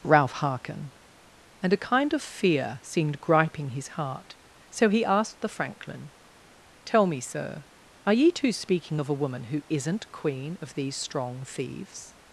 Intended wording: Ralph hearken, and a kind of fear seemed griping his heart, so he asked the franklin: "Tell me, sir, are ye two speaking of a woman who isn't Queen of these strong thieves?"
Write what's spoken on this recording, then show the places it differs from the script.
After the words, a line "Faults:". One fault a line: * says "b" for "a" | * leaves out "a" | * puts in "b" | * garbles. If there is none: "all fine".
Ralph hearken, and a kind of fear seemed griping his heart, so he asked the franklin: "Tell me, sir, are ye two speaking of a woman who isn't Queen of these strong thieves?"
Faults:
all fine